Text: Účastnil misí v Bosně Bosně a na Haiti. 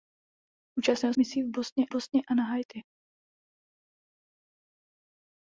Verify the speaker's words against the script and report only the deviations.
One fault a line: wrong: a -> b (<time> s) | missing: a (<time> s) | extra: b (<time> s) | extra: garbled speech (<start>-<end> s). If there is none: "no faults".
no faults